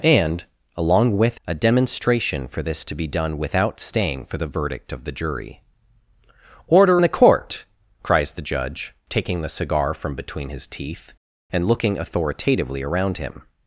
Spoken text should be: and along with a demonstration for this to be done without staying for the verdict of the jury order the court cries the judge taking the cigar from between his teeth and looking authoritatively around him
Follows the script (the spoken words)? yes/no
yes